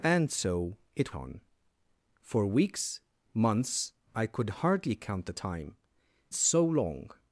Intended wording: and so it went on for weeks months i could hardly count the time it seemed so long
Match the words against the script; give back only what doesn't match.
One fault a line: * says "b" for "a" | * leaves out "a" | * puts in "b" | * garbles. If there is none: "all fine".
* leaves out "went"
* leaves out "it seemed"